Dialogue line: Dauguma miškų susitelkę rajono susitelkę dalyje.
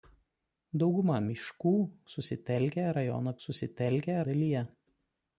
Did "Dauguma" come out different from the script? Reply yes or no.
no